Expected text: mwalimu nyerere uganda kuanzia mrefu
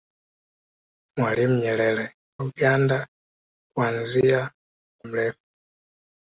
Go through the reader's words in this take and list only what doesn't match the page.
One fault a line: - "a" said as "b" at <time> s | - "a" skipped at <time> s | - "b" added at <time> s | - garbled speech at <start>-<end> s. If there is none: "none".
none